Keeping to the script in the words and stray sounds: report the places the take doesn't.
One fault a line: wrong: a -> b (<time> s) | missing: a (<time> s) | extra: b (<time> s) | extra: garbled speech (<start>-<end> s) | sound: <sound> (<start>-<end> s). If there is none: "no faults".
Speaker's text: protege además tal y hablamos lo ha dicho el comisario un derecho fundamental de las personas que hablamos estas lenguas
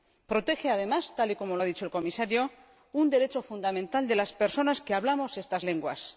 wrong: hablamos -> como (1.4 s)